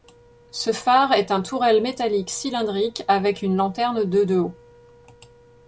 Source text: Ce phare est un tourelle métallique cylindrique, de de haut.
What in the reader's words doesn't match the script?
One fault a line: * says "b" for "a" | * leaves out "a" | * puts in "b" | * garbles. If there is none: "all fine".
* puts in "avec une lanterne"